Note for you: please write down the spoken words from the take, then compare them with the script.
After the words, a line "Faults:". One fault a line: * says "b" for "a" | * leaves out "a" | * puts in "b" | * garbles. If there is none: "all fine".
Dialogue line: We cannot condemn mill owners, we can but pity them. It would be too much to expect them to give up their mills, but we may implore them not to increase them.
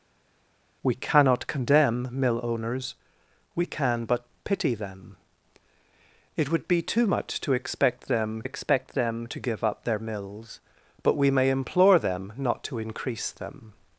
We cannot condemn mill owners, we can but pity them. It would be too much to expect them expect them to give up their mills, but we may implore them not to increase them.
Faults:
* puts in "expect them"